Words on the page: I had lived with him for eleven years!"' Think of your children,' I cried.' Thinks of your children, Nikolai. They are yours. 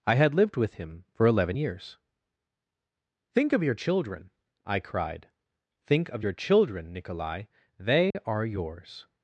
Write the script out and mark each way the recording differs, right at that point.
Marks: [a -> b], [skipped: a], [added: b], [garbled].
I had lived with him for eleven years!"' Think of your children,' I cried.' [Thinks -> Think] of your children, Nikolai. They are yours.